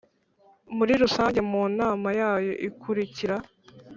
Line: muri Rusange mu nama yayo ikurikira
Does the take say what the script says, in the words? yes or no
yes